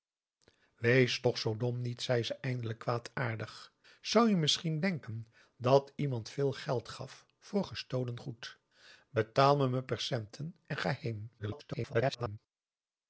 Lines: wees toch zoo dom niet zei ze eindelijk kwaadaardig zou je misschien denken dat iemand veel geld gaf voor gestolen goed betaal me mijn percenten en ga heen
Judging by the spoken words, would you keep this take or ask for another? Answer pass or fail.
fail